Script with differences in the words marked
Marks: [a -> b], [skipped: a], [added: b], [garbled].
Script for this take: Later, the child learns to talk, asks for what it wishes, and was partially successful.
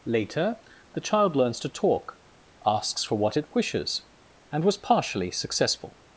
Later, the child learns to talk, asks for what it wishes, and was partially successful.